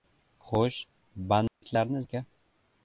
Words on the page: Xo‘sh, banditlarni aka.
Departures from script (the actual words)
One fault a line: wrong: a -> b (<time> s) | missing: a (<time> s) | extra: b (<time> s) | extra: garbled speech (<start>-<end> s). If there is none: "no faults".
no faults